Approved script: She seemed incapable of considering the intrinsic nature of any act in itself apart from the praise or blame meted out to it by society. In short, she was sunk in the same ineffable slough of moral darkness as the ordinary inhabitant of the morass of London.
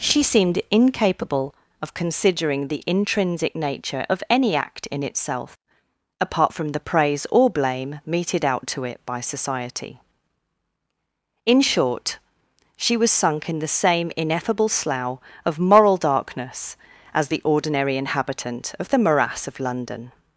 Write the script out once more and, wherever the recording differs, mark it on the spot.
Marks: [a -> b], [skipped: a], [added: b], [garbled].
She seemed incapable of considering the intrinsic nature of any act in itself apart from the praise or blame meted out to it by society. In short, she was sunk in the same ineffable slough of moral darkness as the ordinary inhabitant of the morass of London.